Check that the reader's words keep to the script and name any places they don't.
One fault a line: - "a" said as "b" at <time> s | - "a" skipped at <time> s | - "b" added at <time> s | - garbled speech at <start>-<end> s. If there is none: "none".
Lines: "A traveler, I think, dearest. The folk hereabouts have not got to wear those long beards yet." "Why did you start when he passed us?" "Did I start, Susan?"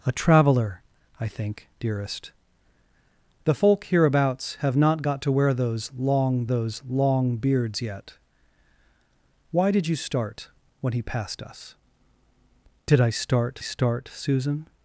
- "those long" added at 6.4 s
- "start" added at 13.6 s